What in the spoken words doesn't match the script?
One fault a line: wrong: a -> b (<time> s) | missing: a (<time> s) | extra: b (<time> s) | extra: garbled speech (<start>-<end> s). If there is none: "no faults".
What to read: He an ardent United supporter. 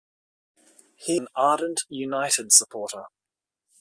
no faults